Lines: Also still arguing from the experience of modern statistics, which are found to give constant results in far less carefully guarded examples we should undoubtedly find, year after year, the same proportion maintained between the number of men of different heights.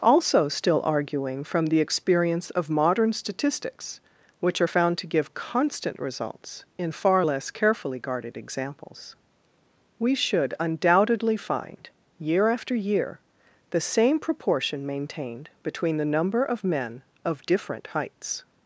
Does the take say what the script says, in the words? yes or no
yes